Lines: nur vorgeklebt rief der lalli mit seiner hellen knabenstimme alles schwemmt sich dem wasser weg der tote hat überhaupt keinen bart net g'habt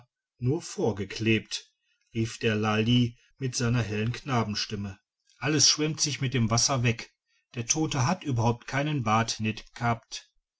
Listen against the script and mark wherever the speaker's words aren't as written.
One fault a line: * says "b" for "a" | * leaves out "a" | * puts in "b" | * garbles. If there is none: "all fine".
* puts in "mit"